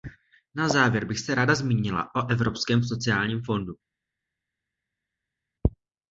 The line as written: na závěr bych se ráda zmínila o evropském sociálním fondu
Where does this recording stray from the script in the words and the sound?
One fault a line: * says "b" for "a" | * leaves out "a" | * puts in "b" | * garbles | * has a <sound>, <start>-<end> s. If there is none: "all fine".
all fine